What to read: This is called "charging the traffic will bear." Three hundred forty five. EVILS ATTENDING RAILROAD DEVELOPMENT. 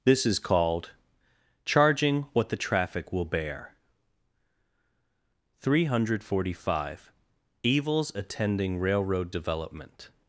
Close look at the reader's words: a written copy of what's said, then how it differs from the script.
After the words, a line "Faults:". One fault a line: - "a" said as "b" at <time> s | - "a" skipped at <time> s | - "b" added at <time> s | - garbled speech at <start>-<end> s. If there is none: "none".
This is called "charging what the traffic will bear." Three hundred forty five. EVILS ATTENDING RAILROAD DEVELOPMENT.
Faults:
- "what" added at 2.3 s